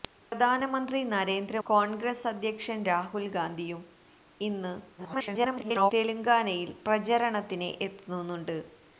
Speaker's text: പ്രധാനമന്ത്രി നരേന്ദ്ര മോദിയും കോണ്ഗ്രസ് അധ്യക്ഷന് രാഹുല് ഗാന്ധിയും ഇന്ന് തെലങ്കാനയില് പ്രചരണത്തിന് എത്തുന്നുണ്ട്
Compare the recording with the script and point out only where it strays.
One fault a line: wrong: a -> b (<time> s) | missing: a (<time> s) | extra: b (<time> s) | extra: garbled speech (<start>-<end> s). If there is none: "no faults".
missing: മോദിയും (1.6 s)
extra: garbled speech (5.0-5.9 s)